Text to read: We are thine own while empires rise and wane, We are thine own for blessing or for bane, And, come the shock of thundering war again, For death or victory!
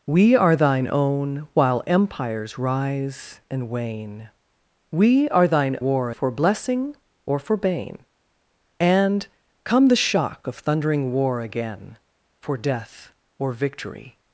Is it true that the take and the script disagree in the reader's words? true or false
true